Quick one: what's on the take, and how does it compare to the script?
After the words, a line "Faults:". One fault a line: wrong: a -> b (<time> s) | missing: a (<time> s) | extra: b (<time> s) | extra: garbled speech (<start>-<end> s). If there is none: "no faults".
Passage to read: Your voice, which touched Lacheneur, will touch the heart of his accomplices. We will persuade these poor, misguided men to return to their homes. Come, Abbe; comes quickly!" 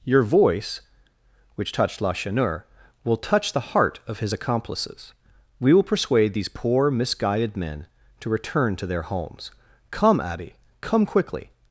Your voice, which touched Lacheneur, will touch the heart of his accomplices. We will persuade these poor, misguided men to return to their homes. Come, Abbe; come quickly!"
Faults:
wrong: comes -> come (10.8 s)